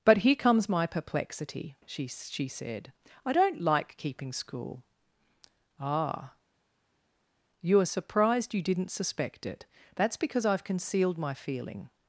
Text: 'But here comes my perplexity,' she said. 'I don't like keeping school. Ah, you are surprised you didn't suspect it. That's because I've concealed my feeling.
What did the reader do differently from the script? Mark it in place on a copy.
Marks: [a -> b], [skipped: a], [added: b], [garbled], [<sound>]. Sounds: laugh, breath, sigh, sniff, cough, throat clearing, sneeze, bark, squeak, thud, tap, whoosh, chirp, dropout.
'But here comes my perplexity,' she [added: she] said. 'I don't like keeping school. Ah, you are surprised you didn't suspect it. That's because I've concealed my feeling.